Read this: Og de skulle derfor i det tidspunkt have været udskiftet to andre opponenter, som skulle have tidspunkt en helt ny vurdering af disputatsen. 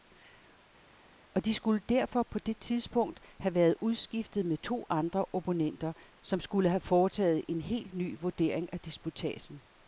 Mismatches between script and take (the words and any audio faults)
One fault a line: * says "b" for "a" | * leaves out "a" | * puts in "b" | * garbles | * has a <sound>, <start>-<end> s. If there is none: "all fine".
* says "på" for "i"
* puts in "med"
* says "foretaget" for "tidspunkt"